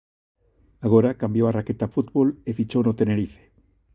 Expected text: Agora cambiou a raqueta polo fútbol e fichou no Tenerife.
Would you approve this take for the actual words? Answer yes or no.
no